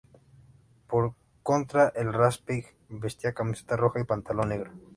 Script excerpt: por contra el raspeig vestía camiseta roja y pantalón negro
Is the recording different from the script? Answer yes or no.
no